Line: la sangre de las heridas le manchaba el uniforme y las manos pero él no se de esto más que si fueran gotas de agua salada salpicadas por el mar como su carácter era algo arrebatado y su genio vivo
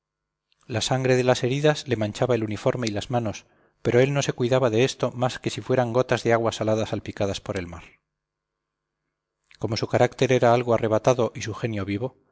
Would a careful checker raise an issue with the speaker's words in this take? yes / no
yes